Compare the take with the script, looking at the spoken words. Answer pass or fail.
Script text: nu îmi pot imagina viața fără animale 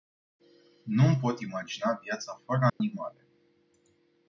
pass